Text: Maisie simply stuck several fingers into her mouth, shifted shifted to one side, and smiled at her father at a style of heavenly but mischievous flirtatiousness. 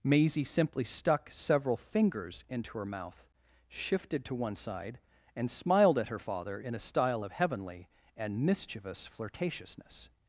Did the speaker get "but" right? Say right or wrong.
wrong